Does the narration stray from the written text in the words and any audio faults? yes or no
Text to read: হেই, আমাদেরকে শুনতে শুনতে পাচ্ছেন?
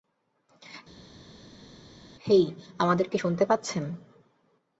yes